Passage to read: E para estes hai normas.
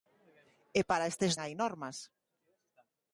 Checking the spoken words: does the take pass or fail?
pass